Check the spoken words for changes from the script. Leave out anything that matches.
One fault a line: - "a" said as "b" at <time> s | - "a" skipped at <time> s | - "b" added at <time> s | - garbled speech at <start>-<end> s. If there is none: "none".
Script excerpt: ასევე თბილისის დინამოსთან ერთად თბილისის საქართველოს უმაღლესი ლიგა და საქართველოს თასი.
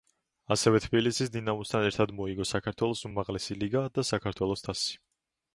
- "თბილისის" said as "მოიგო" at 2.2 s